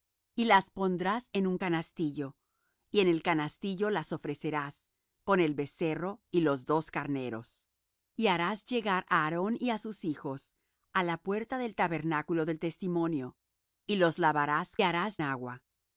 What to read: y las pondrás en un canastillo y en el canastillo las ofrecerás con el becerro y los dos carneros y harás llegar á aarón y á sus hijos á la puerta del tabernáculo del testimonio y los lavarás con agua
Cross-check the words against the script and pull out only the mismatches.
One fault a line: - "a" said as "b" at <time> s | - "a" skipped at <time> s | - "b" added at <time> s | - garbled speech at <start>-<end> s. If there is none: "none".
- "con" said as "harás" at 14.8 s